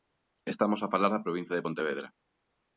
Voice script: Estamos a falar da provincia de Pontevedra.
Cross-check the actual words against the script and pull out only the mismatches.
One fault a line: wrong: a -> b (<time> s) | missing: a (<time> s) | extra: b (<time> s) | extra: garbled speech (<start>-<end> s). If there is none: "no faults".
no faults